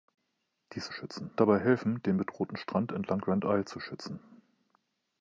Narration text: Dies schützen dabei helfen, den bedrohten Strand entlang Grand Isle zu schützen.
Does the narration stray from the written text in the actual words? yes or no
no